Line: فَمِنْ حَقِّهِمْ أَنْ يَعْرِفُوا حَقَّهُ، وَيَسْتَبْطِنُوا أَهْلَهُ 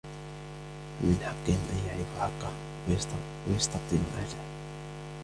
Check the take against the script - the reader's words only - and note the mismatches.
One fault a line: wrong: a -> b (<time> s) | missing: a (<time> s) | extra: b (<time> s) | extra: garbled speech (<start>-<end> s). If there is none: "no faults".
no faults